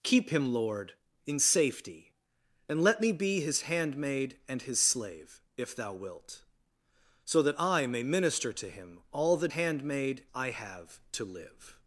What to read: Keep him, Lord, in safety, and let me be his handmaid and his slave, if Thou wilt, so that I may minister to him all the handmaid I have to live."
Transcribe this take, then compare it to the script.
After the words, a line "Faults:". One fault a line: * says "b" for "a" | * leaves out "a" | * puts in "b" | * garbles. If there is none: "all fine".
Keep him, Lord, in safety, and let me be his handmaid and his slave, if Thou wilt, so that I may minister to him all the handmaid I have to live."
Faults:
all fine